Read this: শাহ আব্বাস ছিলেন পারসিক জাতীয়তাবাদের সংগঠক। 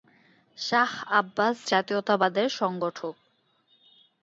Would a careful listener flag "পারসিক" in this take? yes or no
yes